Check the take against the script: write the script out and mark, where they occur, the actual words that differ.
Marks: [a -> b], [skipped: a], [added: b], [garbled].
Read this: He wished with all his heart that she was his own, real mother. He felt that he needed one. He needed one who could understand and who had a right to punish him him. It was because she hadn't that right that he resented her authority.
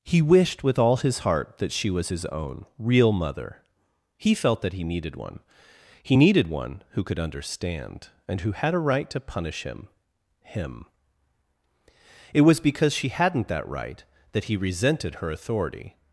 He wished with all his heart that she was his own, real mother. He felt that he needed one. He needed one who could understand and who had a right to punish him him. It was because she hadn't that right that he resented her authority.